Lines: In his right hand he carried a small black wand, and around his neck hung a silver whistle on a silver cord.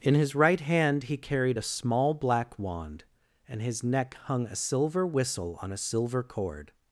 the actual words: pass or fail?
fail